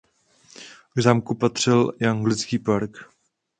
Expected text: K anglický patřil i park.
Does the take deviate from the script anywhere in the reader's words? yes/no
yes